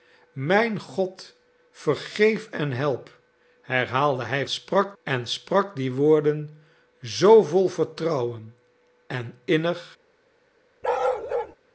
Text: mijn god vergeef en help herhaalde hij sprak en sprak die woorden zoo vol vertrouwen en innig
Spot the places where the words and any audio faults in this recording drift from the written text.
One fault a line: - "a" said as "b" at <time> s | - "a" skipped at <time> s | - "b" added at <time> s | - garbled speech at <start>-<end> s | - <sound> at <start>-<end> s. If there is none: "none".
- bark at 10.8-11.6 s